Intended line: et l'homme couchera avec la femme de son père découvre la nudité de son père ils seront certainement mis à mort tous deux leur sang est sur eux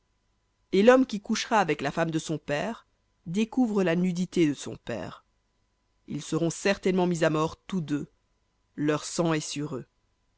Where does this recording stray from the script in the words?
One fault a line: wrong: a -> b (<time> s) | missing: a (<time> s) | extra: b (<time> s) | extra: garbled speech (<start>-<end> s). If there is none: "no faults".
extra: qui (1.1 s)